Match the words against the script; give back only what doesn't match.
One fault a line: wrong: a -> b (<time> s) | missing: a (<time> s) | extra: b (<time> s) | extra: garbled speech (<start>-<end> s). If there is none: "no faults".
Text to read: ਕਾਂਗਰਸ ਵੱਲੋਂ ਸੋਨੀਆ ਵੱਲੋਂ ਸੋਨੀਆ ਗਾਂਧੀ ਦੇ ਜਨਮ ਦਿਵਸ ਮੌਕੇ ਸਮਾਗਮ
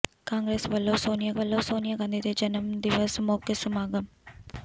no faults